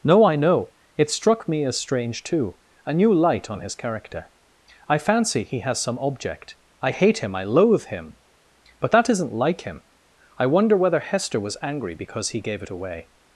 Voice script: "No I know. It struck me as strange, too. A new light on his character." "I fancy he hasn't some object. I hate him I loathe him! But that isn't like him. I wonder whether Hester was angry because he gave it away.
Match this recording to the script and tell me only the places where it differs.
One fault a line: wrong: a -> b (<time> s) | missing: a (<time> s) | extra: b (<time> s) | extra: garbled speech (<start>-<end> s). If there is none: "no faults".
wrong: hasn't -> has (5.6 s)